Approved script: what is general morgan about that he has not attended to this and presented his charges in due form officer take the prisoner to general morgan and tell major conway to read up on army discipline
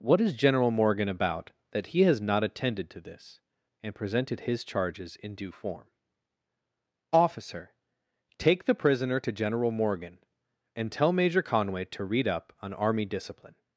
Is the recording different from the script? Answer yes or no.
no